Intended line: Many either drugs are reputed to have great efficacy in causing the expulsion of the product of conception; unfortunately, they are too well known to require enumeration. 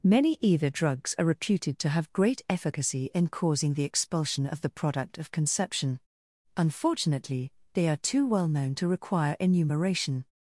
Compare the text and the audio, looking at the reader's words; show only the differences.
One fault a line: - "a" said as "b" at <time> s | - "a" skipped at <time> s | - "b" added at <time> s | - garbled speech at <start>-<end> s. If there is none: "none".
none